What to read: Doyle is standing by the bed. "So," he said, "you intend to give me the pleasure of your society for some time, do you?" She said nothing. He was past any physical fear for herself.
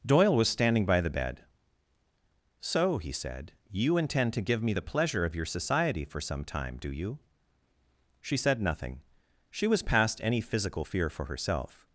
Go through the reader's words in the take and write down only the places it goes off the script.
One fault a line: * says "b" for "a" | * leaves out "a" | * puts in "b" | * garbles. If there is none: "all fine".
* says "was" for "is"
* says "She" for "He"